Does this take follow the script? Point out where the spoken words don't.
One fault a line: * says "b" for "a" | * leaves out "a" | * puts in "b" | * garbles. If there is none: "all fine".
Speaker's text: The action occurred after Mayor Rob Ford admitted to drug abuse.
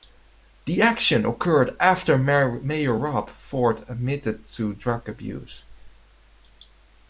all fine